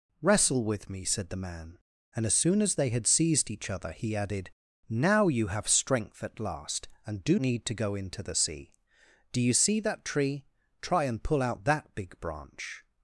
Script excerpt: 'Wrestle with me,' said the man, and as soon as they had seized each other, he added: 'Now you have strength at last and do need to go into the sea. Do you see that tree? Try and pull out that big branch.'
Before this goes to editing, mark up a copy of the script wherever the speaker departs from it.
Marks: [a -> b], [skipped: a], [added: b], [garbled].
'Wrestle with me,' said the man, and as soon as they had seized each other, he added: 'Now you have strength at last and do need to go into the sea. Do you see that tree? Try and pull out that big branch.'